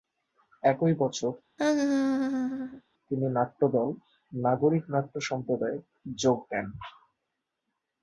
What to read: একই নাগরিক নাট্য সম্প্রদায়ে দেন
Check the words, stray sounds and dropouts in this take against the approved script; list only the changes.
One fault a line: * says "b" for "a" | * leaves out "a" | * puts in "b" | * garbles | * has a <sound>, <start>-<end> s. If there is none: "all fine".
* puts in "বছর তিনি নাট্যদল"
* has a laugh, 1.6-2.8 s
* puts in "যোগ"